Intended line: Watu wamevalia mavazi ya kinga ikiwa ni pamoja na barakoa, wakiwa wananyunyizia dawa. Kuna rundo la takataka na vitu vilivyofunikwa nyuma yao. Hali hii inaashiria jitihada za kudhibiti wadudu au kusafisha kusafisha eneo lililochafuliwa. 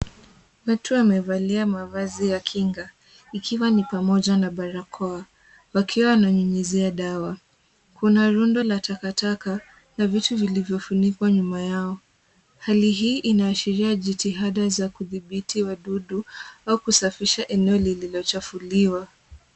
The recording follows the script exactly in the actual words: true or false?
false